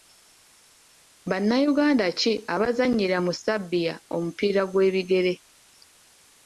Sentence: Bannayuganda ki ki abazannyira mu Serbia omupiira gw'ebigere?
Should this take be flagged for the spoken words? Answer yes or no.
yes